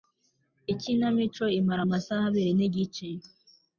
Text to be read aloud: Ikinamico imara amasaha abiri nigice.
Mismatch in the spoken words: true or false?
false